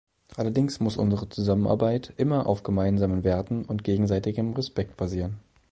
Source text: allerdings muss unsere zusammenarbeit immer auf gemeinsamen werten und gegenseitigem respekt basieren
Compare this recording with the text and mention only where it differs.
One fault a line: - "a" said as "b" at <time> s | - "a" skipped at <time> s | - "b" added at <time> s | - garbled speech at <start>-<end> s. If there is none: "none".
none